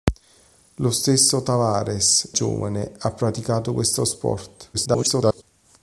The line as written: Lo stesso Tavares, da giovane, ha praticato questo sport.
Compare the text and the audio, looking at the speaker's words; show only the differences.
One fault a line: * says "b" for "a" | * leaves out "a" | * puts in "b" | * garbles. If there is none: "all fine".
* leaves out "da"
* garbles